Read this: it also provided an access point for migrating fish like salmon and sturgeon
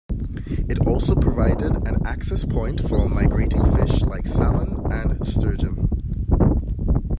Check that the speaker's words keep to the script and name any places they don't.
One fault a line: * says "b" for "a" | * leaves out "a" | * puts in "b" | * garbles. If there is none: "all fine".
all fine